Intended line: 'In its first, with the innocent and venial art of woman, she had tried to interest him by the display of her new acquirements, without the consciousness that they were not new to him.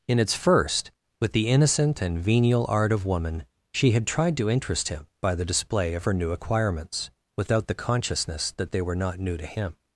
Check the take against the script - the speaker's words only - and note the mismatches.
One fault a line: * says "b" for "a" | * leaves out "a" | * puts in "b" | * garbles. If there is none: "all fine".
all fine